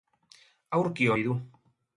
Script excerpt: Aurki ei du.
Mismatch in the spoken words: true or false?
false